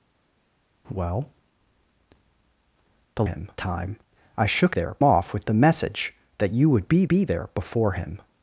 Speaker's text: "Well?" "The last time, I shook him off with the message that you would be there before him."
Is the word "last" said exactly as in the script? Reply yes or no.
no